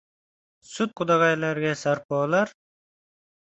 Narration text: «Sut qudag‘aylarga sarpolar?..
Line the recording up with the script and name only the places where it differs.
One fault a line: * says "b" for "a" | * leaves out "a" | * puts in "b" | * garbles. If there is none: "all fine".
all fine